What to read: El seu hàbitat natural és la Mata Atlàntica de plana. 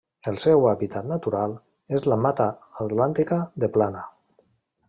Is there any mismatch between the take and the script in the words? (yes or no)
no